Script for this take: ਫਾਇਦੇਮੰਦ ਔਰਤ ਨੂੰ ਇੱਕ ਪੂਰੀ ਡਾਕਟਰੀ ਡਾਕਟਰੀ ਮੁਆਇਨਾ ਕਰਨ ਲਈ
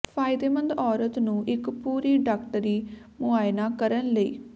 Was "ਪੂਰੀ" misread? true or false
false